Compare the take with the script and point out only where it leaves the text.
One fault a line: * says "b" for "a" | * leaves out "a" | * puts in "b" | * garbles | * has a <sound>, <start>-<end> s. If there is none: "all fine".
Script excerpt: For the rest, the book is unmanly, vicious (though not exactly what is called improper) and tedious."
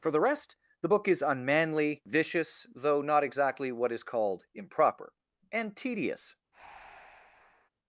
* has a breath, 6.5-7.7 s